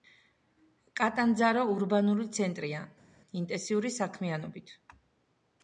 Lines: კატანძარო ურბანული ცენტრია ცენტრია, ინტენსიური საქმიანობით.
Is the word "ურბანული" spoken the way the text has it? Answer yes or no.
yes